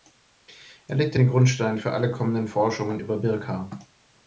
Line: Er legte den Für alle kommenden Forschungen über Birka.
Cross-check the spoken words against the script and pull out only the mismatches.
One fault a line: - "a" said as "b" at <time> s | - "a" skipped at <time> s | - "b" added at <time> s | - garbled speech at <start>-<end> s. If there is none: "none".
- "Grundstein" added at 1.3 s